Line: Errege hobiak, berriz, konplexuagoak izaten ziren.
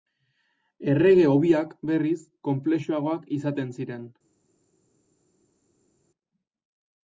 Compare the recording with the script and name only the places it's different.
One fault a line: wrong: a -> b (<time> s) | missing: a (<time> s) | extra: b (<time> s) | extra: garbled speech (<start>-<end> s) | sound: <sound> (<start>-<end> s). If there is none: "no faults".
no faults